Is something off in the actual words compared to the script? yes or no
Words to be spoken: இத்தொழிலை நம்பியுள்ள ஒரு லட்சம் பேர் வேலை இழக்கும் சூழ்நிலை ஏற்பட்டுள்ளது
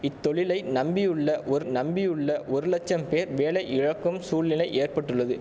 yes